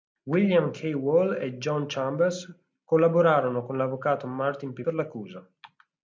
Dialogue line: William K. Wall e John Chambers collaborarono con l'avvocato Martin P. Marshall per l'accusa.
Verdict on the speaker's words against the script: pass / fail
fail